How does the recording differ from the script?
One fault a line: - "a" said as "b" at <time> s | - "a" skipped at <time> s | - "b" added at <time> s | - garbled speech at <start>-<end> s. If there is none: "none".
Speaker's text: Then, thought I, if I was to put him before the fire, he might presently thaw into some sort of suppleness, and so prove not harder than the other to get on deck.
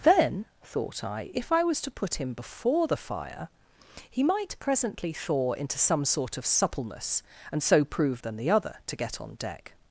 - "not harder" skipped at 8.2 s